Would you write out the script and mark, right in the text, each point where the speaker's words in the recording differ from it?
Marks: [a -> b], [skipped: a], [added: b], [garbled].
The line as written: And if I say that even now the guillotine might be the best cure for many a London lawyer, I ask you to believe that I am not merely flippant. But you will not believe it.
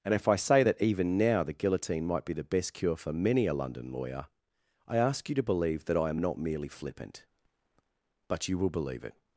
And if I say that even now the guillotine might be the best cure for many a London lawyer, I ask you to believe that I am not merely flippant. But you will [skipped: not] believe it.